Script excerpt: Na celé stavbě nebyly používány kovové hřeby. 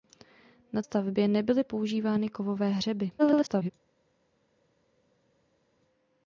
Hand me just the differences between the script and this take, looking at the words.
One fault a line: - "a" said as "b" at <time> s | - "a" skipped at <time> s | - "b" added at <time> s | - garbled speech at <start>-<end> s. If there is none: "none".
- "celé" skipped at 0.8 s
- garbled speech at 3.2-3.7 s